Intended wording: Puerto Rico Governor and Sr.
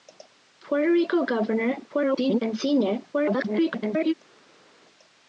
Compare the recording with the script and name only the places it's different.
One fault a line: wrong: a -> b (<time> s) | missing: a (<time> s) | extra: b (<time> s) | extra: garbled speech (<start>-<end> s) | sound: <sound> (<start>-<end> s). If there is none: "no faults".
extra: garbled speech (1.9-2.4 s)
extra: garbled speech (3.1-4.1 s)